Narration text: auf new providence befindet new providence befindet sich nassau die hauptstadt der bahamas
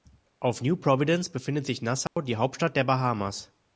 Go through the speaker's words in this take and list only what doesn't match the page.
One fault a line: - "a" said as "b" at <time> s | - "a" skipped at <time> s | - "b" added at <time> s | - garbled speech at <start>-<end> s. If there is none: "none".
- "new providence befindet" skipped at 1.7 s